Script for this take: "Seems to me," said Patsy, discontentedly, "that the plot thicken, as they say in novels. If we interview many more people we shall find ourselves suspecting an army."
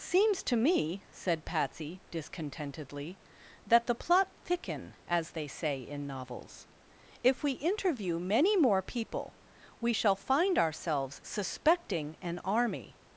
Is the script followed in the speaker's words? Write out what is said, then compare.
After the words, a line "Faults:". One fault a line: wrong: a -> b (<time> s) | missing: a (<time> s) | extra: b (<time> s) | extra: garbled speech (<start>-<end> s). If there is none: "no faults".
"Seems to me," said Patsy, discontentedly, "that the plot thicken, as they say in novels. If we interview many more people we shall find ourselves suspecting an army."
Faults:
no faults